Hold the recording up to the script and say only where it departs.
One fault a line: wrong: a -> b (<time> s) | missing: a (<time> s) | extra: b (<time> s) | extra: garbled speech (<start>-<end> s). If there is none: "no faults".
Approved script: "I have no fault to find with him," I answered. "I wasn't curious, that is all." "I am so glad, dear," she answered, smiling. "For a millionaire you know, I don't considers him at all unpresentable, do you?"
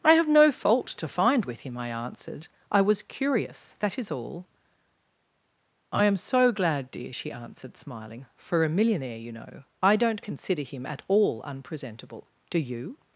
wrong: wasn't -> was (2.8 s)
wrong: considers -> consider (10.2 s)